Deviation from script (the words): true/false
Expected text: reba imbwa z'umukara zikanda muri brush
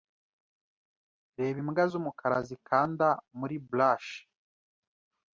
false